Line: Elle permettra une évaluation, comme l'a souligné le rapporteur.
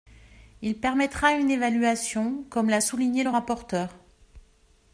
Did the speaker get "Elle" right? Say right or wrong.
wrong